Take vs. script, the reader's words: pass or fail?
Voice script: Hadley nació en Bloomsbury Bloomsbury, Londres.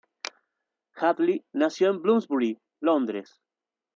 fail